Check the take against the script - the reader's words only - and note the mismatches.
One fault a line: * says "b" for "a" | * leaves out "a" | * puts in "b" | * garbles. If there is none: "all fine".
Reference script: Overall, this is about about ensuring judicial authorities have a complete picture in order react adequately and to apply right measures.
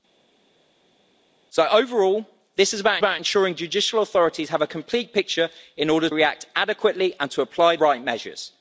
all fine